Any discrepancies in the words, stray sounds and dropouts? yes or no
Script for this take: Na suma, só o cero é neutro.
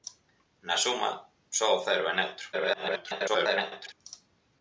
yes